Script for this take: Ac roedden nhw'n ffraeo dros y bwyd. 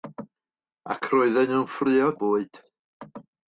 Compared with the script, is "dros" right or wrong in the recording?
wrong